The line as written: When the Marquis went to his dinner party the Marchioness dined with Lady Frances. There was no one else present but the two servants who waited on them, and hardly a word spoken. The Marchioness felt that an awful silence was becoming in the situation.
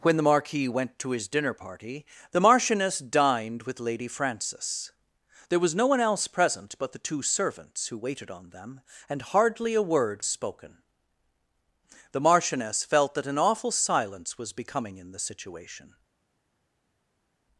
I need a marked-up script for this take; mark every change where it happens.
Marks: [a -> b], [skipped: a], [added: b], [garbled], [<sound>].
When the Marquis went to his dinner party the Marchioness dined with Lady Frances. There was no one else present but the two servants who waited on them, and hardly a word spoken. The Marchioness felt that an awful silence was becoming in the situation.